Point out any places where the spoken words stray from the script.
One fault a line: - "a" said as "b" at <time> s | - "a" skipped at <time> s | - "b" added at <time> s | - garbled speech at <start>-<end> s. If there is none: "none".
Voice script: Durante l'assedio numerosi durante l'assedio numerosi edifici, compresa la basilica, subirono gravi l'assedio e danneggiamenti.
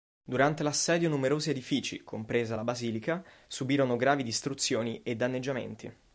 - "durante l'assedio numerosi" skipped at 1.5 s
- "l'assedio" said as "distruzioni" at 4.2 s